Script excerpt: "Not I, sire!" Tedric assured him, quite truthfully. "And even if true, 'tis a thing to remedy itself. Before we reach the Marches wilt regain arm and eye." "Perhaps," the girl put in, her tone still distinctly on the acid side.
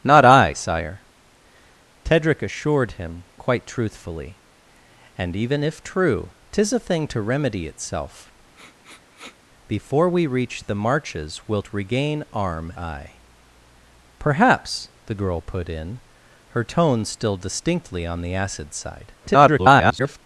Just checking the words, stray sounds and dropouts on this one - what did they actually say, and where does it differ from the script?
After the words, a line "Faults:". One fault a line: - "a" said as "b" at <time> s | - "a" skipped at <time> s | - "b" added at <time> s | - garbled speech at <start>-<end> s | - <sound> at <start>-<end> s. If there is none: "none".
"Not I, sire!" Tedric assured him, quite truthfully. "And even if true, 'tis a thing to remedy itself. Before we reach the Marches wilt regain arm eye." "Perhaps," the girl put in, her tone still distinctly on the acid side. [garbled]
Faults:
- sniff at 8.5-9.4 s
- "and" skipped at 12.7 s
- garbled speech at 19.2-20.2 s